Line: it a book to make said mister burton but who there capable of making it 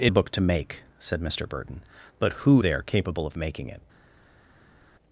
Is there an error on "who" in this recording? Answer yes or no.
no